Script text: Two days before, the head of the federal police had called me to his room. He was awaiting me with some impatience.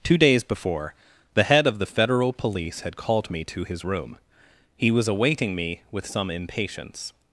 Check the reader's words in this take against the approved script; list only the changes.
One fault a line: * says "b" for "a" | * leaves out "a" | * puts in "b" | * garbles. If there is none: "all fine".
all fine